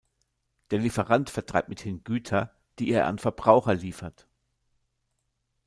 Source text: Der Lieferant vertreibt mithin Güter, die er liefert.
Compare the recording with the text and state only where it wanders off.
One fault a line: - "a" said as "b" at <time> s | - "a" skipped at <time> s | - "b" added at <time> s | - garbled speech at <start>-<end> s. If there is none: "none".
- "an Verbraucher" added at 3.1 s